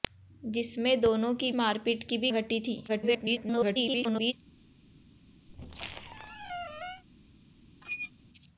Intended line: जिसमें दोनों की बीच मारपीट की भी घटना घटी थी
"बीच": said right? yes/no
no